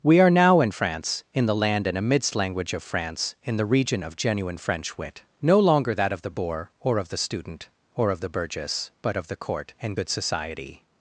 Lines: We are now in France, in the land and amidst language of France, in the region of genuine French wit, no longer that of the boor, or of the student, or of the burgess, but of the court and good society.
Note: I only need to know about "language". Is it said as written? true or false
true